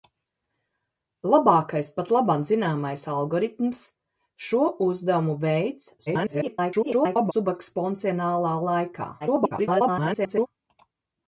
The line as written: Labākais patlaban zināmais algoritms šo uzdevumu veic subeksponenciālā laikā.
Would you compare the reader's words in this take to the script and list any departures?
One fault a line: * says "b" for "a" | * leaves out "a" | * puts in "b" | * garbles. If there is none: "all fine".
* garbles
* garbles